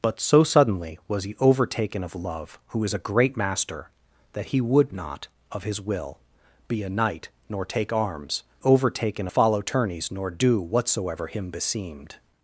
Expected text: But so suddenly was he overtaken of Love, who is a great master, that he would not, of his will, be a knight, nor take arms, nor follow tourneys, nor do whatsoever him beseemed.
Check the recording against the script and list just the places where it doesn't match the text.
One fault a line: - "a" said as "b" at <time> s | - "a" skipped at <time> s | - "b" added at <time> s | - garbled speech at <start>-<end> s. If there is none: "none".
- "nor" said as "overtaken" at 8.6 s